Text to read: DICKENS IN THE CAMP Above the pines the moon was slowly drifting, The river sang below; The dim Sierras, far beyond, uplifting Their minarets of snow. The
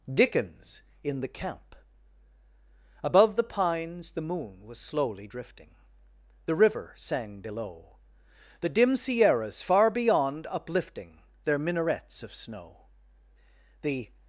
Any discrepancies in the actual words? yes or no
no